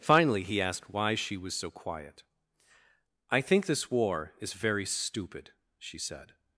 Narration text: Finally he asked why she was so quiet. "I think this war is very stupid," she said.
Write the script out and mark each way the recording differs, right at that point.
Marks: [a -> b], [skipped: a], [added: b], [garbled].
Finally he asked why she was so quiet. "I think this war is very stupid," she said.